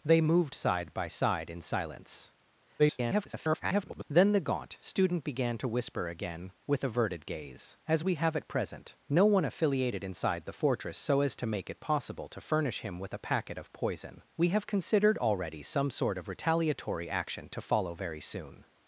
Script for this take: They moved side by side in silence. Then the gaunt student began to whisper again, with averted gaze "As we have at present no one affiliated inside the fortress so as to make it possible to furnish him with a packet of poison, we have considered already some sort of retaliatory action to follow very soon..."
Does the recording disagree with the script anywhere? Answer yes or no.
yes